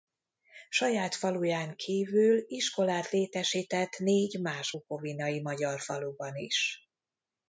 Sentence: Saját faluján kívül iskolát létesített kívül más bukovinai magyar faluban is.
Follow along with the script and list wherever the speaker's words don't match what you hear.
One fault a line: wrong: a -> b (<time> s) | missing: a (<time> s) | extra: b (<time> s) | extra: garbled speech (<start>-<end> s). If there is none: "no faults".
wrong: kívül -> négy (4.0 s)